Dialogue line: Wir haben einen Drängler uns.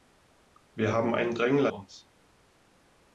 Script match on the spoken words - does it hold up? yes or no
yes